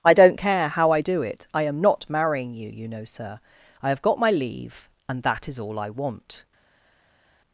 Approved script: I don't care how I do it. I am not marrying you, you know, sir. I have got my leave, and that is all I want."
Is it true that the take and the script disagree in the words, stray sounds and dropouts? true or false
false